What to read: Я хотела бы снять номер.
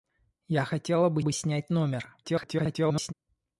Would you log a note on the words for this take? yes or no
yes